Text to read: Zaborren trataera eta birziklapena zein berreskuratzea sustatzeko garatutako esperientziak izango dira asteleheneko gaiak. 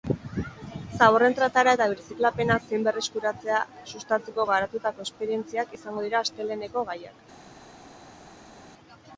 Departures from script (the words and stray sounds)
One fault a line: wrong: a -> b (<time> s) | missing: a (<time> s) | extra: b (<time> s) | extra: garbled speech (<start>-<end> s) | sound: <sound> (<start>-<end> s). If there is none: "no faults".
no faults